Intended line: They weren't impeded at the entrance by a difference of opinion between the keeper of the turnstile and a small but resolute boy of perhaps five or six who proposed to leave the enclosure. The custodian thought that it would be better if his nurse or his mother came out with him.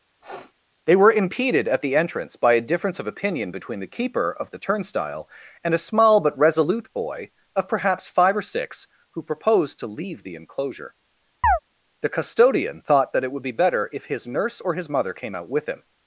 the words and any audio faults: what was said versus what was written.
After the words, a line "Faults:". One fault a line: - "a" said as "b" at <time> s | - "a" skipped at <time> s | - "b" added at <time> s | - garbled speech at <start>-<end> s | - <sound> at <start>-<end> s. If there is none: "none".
They were impeded at the entrance by a difference of opinion between the keeper of the turnstile and a small but resolute boy of perhaps five or six who proposed to leave the enclosure. The custodian thought that it would be better if his nurse or his mother came out with him.
Faults:
- sniff at 0.2-0.5 s
- "weren't" said as "were" at 1.0 s
- chirp at 11.4-11.6 s